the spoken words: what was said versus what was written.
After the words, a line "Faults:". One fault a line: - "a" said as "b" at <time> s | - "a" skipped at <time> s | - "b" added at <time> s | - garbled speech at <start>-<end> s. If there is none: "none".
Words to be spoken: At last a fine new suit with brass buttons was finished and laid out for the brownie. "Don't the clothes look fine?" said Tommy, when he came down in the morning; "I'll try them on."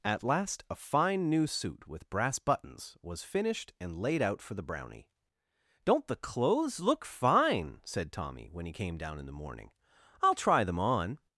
At last a fine new suit with brass buttons was finished and laid out for the brownie. "Don't the clothes look fine?" said Tommy, when he came down in the morning; "I'll try them on."
Faults:
none